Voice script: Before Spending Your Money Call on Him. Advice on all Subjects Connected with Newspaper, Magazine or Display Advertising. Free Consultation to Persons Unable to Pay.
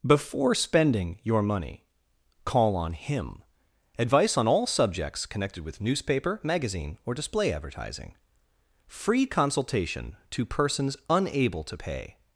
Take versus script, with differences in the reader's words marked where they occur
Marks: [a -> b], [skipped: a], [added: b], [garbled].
Before Spending Your Money Call on Him. Advice on all Subjects Connected with Newspaper, Magazine or Display Advertising. Free Consultation to Persons Unable to Pay.